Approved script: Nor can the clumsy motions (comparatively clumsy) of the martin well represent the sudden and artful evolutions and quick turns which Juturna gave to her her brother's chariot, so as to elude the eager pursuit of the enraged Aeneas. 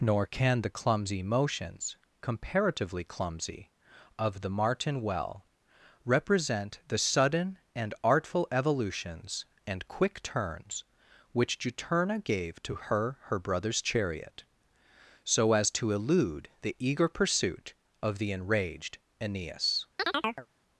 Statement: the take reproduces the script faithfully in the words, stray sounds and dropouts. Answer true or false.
false